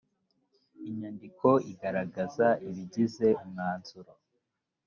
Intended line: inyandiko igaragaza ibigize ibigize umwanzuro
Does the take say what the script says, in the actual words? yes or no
no